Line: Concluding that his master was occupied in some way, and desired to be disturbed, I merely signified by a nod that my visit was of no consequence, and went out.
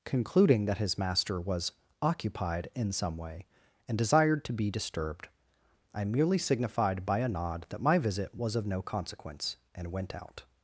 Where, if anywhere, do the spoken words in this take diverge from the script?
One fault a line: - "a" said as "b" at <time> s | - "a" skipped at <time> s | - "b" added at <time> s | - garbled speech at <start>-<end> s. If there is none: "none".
none